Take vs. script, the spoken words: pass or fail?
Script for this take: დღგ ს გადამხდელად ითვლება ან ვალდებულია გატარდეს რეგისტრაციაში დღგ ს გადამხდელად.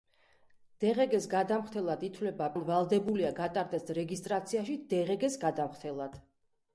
pass